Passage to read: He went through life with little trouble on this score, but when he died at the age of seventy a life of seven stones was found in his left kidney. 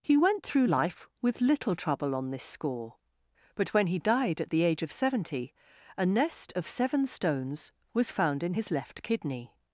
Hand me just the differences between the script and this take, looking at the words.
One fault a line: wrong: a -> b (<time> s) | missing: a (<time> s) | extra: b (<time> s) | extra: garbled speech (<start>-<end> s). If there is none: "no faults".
wrong: life -> nest (6.1 s)